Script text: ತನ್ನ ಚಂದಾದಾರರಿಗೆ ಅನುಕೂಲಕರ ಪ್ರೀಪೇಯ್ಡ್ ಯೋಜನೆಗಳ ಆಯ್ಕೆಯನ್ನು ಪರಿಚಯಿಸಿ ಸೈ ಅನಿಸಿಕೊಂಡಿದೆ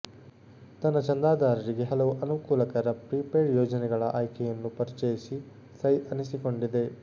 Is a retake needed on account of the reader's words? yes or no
yes